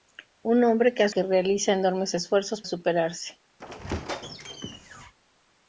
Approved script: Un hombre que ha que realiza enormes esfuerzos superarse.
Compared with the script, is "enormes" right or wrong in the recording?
right